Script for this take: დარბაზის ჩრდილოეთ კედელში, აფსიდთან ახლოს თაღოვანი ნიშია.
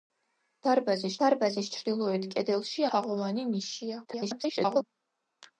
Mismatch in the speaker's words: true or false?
true